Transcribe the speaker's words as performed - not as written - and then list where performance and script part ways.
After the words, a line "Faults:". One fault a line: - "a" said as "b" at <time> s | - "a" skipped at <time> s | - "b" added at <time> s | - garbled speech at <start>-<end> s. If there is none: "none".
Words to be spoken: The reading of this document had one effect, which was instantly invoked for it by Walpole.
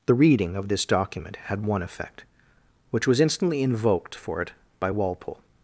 The reading of this document had one effect, which was instantly invoked for it by Walpole.
Faults:
none